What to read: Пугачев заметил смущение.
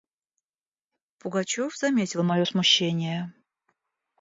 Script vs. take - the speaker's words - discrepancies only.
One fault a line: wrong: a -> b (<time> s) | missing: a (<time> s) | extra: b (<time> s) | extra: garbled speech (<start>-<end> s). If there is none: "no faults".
extra: мое (2.2 s)